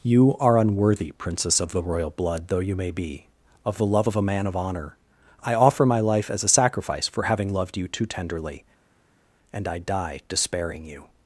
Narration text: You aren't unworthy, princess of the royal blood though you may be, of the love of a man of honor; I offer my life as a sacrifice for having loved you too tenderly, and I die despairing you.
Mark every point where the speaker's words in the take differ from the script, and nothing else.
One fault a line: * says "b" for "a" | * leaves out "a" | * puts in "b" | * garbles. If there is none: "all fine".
* says "are" for "aren't"